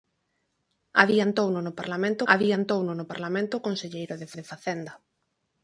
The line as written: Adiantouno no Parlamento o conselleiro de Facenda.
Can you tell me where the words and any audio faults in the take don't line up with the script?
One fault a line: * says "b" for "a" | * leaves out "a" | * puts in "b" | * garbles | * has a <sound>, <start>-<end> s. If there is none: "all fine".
* puts in "adiantouno no Parlamento"
* puts in "de"